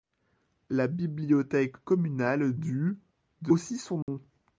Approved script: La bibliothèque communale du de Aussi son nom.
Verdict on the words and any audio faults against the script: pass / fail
fail